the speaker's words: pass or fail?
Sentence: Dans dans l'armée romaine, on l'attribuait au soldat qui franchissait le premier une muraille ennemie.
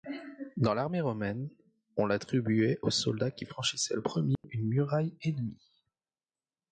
fail